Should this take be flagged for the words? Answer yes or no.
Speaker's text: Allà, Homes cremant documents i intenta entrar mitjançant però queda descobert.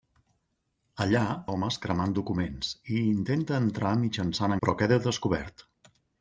no